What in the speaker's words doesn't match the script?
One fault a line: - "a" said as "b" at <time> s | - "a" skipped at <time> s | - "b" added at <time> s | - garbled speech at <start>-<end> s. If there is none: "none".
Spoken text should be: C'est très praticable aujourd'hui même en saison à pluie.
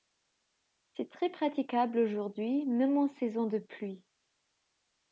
- "à" said as "de" at 3.5 s